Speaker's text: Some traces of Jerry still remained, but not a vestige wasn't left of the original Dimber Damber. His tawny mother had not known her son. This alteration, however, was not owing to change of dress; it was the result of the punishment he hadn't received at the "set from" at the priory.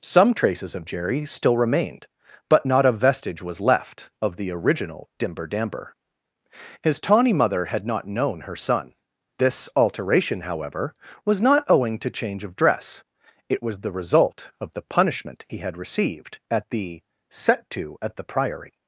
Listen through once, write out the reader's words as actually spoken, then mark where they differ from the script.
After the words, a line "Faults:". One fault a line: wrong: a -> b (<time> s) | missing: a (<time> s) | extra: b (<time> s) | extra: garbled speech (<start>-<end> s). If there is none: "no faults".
Some traces of Jerry still remained, but not a vestige was left of the original Dimber Damber. His tawny mother had not known her son. This alteration, however, was not owing to change of dress; it was the result of the punishment he had received at the "set to" at the priory.
Faults:
wrong: wasn't -> was (3.4 s)
wrong: hadn't -> had (15.6 s)
wrong: from -> to (17.7 s)